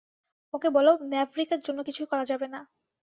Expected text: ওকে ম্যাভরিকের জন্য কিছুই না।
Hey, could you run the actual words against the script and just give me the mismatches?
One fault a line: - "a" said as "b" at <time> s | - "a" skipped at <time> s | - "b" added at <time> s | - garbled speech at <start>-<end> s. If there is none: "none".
- "বলো" added at 0.8 s
- "করা যাবে" added at 2.1 s